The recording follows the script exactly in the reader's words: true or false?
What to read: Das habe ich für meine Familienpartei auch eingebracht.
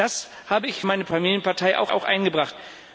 false